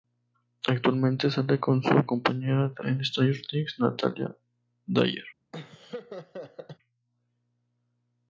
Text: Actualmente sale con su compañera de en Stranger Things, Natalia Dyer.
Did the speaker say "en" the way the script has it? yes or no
yes